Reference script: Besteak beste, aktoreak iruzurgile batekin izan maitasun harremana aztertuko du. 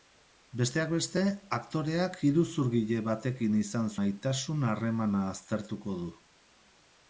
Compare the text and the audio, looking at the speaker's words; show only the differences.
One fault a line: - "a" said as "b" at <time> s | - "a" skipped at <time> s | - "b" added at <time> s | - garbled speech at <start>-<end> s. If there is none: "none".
none